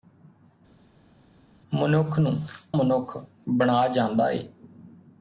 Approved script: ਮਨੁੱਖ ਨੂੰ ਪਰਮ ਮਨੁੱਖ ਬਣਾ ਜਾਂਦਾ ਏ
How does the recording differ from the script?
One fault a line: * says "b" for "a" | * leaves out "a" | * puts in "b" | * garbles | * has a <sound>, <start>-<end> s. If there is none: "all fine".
* leaves out "ਪਰਮ"